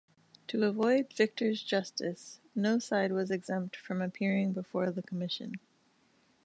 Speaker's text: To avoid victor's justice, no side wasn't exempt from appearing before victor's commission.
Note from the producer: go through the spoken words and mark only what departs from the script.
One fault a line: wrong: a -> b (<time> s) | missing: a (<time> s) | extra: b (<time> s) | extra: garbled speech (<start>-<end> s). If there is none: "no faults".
wrong: wasn't -> was (3.1 s)
wrong: victor's -> the (4.9 s)